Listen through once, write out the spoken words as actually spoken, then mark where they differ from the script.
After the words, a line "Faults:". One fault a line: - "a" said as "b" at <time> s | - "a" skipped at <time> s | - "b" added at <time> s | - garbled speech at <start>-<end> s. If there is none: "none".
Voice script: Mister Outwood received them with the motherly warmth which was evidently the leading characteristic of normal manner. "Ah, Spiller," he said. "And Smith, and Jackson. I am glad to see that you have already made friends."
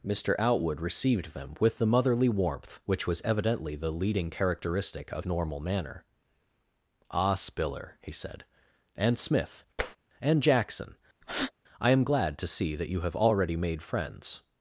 Mister Outwood received them with the motherly warmth which was evidently the leading characteristic of normal manner. "Ah, Spiller," he said. "And Smith, and Jackson. I am glad to see that you have already made friends."
Faults:
none